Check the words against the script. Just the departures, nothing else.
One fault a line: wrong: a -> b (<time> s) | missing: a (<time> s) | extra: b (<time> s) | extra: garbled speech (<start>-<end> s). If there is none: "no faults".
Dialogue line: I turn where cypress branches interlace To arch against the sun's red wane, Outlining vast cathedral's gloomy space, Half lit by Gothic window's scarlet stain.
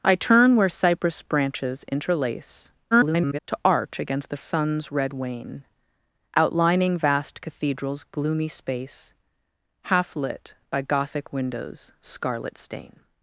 extra: garbled speech (2.9-3.4 s)